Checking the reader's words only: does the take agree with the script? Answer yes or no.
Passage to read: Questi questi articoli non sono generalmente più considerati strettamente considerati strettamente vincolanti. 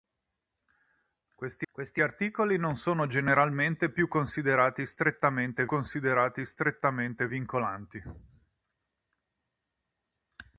yes